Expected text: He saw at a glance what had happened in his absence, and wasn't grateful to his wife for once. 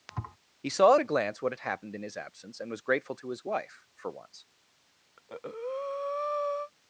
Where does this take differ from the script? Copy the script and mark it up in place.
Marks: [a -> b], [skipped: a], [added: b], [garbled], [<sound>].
[thud] He saw at a glance what had happened in his absence, and [wasn't -> was] grateful to his wife for once. [breath]